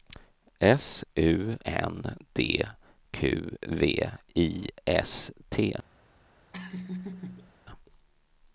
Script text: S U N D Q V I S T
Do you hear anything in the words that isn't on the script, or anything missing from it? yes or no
no